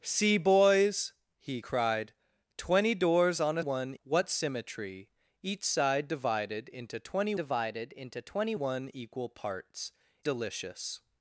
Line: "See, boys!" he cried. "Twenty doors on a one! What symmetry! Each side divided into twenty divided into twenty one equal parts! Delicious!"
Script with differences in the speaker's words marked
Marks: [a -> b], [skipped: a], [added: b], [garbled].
"See, boys!" he cried. "Twenty doors on a one! What symmetry! Each side divided into twenty divided into twenty one equal parts! Delicious!"